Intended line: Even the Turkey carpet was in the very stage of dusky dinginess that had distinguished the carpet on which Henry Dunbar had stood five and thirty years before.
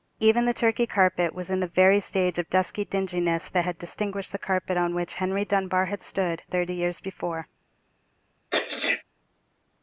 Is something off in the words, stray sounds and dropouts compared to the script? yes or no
yes